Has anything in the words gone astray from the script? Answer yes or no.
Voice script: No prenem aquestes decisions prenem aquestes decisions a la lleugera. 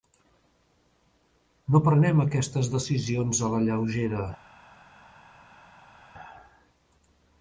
yes